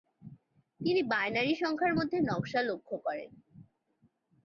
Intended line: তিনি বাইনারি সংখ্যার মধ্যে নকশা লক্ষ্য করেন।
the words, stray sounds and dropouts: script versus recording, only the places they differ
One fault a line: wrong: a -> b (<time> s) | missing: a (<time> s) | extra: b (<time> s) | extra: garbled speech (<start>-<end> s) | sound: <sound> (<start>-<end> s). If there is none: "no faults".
no faults